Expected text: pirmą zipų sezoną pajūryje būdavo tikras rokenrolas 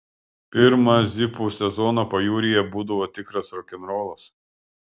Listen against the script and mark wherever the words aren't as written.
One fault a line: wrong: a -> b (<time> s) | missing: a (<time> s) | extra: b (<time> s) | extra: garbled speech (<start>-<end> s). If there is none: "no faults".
no faults